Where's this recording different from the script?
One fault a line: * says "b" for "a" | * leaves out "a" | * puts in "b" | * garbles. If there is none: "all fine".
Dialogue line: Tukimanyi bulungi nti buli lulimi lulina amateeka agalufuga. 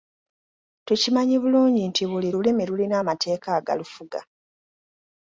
all fine